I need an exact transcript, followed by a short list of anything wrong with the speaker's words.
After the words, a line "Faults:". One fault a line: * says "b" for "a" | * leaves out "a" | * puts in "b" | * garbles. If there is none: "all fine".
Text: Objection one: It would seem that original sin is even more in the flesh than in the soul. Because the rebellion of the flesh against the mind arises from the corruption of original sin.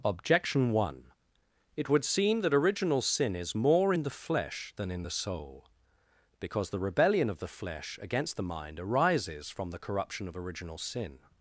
Objection one: It would seem that original sin is more in the flesh than in the soul. Because the rebellion of the flesh against the mind arises from the corruption of original sin.
Faults:
* leaves out "even"